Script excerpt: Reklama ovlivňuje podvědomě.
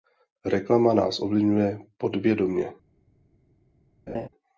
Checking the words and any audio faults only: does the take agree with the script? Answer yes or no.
no